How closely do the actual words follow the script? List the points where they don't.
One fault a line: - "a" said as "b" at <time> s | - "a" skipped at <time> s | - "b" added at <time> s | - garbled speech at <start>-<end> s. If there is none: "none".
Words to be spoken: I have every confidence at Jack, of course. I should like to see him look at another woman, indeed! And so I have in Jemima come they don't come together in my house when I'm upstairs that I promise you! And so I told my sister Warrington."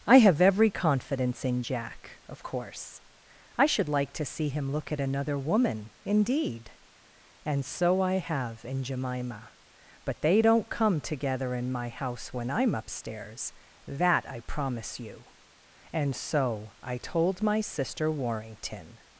- "at" said as "in" at 1.4 s
- "come" said as "but" at 10.0 s